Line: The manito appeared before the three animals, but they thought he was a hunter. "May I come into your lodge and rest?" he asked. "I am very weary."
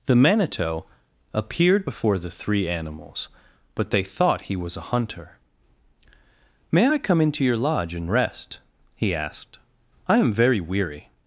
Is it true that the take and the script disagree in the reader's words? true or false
false